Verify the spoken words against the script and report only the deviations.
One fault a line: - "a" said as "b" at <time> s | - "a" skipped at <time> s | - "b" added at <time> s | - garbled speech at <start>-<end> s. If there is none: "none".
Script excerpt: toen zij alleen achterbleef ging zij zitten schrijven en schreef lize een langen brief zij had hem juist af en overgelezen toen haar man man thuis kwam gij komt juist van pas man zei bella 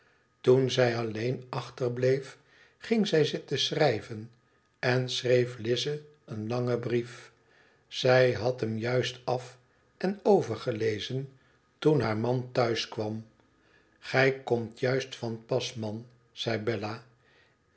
- "man" skipped at 12.5 s